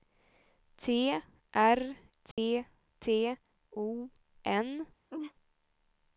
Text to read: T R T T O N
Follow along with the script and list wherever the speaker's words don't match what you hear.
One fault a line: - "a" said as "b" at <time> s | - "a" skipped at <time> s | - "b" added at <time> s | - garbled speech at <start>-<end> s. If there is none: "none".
none